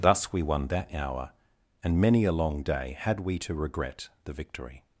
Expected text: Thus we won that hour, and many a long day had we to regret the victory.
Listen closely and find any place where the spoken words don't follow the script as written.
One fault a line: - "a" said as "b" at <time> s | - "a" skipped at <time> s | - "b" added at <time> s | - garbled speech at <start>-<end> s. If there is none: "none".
none